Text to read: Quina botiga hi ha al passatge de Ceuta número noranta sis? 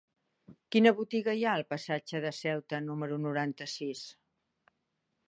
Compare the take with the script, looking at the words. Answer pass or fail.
pass